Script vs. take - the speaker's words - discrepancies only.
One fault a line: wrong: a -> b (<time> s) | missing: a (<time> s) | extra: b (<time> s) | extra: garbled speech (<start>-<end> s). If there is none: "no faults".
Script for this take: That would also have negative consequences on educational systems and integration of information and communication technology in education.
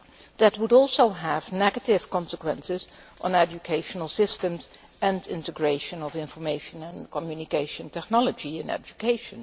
no faults